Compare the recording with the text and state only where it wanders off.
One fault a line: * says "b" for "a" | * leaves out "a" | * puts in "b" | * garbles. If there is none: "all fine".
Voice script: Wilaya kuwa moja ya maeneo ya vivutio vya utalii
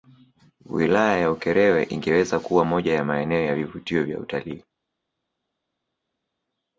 * puts in "ya Ukerewe ingeweza"